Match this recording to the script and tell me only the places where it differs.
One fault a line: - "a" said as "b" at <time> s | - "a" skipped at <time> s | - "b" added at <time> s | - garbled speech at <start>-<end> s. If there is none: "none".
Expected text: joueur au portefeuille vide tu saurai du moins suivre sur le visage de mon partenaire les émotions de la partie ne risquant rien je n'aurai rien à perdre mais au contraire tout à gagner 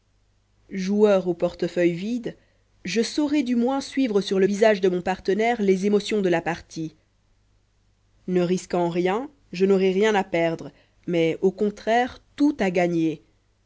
- "tu" said as "je" at 2.9 s